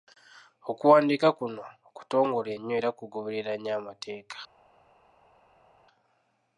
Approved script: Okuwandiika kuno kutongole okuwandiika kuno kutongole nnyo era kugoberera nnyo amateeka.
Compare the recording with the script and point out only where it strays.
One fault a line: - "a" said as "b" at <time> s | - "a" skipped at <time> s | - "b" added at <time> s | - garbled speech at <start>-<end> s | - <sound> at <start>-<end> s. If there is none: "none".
- "okuwandiika kuno kutongole" skipped at 2.5 s